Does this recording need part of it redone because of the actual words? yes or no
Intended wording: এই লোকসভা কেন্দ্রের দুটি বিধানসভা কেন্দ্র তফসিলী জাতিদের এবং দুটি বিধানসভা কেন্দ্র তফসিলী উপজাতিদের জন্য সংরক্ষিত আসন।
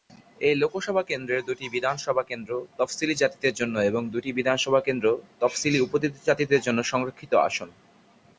yes